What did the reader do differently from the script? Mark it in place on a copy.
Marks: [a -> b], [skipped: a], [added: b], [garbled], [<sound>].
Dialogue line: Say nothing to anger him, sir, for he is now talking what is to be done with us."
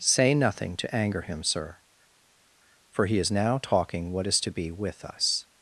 Say nothing to anger him, sir, for he is now talking what is to be [skipped: done] with us."